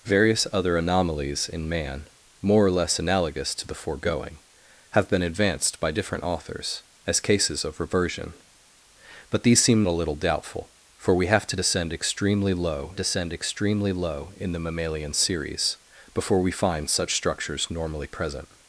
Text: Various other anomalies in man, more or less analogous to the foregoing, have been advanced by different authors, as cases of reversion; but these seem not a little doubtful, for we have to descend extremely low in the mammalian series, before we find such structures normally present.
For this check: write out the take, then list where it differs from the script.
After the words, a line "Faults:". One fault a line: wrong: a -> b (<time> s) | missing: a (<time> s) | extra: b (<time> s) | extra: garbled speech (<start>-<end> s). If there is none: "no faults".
Various other anomalies in man, more or less analogous to the foregoing, have been advanced by different authors, as cases of reversion; but these seem a little doubtful, for we have to descend extremely low descend extremely low in the mammalian series, before we find such structures normally present.
Faults:
missing: not (9.8 s)
extra: descend extremely low (12.9 s)